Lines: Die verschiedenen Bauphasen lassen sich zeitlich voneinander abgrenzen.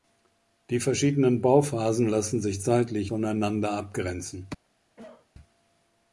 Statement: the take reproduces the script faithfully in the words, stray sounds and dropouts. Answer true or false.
false